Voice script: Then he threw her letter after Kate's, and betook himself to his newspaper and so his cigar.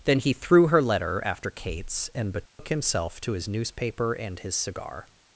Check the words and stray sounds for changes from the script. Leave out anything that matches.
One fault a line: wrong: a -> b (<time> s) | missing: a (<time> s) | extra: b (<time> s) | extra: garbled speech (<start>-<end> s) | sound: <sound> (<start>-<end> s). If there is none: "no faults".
sound: dropout (2.5-2.6 s)
missing: so (4.4 s)